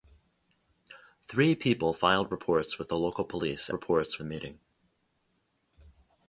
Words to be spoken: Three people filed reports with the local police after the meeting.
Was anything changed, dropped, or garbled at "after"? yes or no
yes